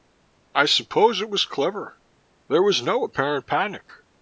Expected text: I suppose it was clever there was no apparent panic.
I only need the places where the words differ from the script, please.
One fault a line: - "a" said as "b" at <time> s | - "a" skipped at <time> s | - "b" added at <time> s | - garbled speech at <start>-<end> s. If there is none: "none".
none